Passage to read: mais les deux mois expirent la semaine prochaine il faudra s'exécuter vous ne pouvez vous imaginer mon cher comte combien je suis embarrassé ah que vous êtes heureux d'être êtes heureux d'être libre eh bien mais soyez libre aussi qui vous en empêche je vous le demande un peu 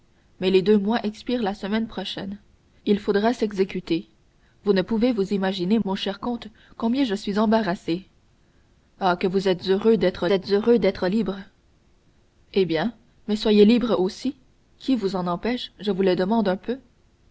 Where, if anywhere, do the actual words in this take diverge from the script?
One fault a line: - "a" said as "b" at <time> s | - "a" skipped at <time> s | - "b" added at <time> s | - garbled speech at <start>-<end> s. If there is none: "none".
none